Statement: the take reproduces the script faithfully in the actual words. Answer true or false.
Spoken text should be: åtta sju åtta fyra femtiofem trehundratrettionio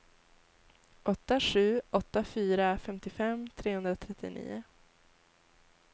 true